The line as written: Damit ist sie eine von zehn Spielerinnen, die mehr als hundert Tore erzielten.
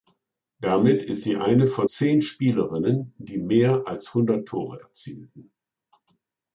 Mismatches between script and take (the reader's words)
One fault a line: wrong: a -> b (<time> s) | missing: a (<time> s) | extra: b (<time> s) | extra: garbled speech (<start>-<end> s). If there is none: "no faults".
no faults